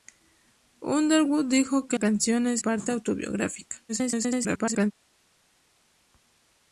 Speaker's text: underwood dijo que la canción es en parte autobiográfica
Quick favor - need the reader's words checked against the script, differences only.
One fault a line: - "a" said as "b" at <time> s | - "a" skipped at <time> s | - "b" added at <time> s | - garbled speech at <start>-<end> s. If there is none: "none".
- "la" skipped at 2.0 s
- "en" skipped at 2.6 s
- garbled speech at 3.9-4.9 s